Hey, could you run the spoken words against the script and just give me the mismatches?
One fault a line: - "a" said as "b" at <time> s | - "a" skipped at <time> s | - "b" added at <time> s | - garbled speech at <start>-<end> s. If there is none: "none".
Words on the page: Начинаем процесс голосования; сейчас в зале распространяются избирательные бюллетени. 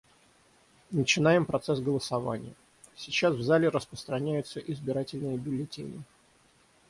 none